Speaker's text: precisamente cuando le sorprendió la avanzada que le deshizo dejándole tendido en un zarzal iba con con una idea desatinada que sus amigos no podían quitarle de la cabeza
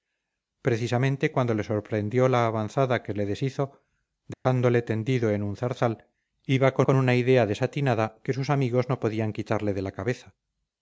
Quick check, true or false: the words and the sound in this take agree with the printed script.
false